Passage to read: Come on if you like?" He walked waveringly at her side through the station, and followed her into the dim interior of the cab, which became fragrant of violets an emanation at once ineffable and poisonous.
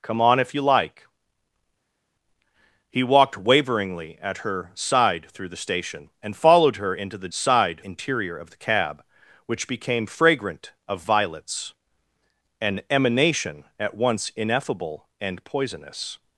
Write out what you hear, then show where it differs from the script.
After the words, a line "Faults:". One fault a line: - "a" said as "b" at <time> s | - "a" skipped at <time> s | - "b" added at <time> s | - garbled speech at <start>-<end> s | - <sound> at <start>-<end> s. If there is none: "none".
Come on if you like?" He walked waveringly at her side through the station, and followed her into the side interior of the cab, which became fragrant of violets an emanation at once ineffable and poisonous.
Faults:
- "dim" said as "side" at 7.3 s